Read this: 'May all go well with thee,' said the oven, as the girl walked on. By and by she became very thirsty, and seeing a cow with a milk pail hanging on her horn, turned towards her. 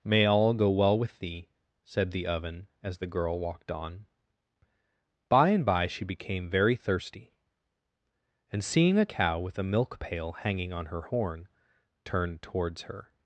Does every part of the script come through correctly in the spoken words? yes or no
yes